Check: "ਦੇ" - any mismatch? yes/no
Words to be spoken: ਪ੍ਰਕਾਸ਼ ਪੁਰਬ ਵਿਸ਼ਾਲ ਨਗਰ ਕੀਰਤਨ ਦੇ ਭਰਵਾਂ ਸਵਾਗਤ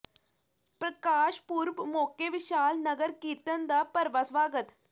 yes